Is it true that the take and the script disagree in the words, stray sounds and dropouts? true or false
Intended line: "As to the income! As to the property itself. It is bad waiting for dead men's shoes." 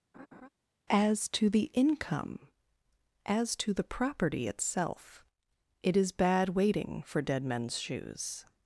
true